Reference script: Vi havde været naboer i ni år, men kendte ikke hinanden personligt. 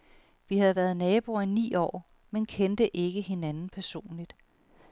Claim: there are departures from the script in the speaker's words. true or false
false